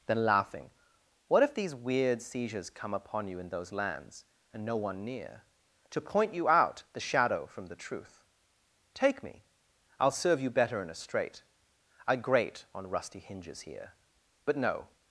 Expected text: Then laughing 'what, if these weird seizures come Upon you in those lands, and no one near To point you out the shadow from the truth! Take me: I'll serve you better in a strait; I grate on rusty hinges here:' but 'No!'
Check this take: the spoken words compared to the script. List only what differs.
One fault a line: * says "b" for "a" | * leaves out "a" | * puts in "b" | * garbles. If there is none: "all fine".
all fine